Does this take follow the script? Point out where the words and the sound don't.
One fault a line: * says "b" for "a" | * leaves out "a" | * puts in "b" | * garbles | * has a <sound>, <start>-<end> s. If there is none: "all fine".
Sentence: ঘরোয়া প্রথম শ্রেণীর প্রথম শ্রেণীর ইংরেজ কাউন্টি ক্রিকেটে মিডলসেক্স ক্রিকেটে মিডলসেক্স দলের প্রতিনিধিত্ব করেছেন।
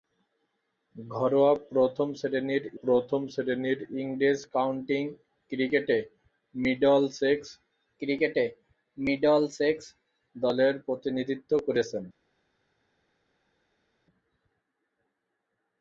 all fine